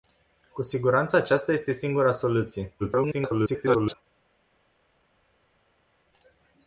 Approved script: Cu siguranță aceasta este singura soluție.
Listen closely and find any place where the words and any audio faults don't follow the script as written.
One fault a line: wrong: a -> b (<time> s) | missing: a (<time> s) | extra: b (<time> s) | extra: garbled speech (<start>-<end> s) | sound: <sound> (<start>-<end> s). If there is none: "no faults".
extra: garbled speech (2.8-4.0 s)